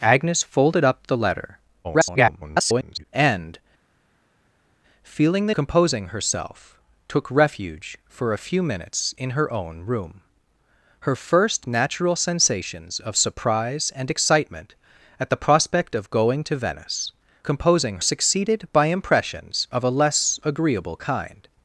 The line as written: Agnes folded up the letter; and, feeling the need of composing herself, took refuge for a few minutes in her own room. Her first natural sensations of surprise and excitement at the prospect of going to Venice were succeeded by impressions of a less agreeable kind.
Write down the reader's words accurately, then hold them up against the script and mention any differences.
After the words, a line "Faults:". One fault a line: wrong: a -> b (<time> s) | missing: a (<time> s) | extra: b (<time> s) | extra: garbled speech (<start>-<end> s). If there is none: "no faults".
Agnes folded up the letter; [garbled] and, feeling the composing herself, took refuge for a few minutes in her own room. Her first natural sensations of surprise and excitement at the prospect of going to Venice composing succeeded by impressions of a less agreeable kind.
Faults:
extra: garbled speech (1.8-3.0 s)
missing: need of (5.5 s)
wrong: were -> composing (17.4 s)